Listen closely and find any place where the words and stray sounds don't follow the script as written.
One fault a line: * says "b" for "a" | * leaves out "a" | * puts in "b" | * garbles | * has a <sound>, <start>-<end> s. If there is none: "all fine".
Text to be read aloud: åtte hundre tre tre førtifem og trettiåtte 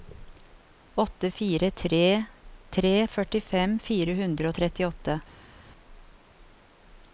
* says "fire" for "hundre"
* puts in "fire hundre"